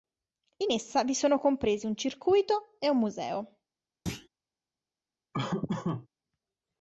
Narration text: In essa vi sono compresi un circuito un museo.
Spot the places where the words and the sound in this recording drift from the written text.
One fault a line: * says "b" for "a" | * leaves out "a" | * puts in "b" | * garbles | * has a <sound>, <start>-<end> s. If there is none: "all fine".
* puts in "e"
* has a thud, 4.1-4.3 s
* has a laugh, 5.3-6.1 s